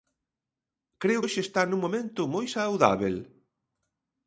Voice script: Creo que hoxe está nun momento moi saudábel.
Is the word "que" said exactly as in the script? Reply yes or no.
no